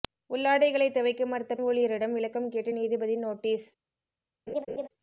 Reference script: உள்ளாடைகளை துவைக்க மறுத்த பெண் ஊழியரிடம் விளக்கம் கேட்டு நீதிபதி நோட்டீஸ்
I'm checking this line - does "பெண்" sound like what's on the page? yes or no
no